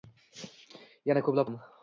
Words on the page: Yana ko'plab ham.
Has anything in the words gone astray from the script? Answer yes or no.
no